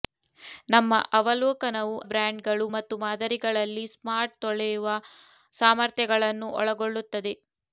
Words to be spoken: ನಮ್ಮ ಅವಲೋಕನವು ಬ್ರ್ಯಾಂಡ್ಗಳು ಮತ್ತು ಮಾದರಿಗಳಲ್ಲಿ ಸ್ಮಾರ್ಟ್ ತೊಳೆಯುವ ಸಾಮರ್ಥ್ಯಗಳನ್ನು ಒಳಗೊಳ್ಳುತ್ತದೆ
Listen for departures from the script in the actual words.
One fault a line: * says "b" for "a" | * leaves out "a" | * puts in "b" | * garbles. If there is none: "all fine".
all fine